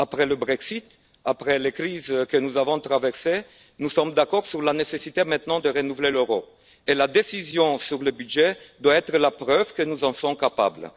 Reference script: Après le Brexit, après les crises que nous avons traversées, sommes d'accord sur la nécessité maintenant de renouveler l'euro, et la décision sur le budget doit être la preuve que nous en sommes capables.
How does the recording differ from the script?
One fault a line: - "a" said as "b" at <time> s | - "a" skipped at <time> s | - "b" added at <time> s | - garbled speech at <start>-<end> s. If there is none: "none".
- "nous" added at 3.8 s